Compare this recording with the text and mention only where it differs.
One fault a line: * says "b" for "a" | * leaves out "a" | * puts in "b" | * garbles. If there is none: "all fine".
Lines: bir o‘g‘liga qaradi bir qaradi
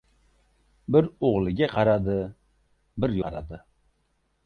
all fine